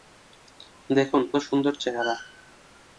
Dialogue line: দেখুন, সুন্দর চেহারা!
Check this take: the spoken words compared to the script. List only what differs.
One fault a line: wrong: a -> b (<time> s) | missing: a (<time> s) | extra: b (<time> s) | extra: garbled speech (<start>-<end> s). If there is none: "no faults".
no faults